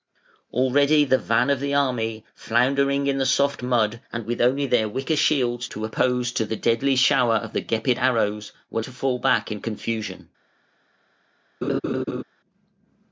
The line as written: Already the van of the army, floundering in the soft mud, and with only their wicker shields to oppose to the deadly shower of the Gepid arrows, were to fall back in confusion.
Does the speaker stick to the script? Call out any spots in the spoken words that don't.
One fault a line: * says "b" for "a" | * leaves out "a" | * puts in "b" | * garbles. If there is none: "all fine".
all fine